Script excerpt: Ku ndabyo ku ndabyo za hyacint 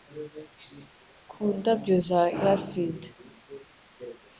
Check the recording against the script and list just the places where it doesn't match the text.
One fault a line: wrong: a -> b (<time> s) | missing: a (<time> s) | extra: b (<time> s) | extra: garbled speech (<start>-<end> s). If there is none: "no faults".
missing: ku ndabyo (1.9 s)